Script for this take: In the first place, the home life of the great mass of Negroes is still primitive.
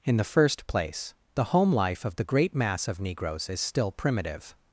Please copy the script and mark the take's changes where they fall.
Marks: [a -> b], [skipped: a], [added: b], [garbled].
In the first place, the home life of the great mass of Negroes is still primitive.